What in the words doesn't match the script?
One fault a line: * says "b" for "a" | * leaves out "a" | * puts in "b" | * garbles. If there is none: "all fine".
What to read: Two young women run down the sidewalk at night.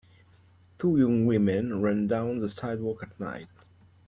all fine